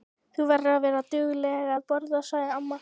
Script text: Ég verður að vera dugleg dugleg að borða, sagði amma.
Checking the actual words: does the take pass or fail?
fail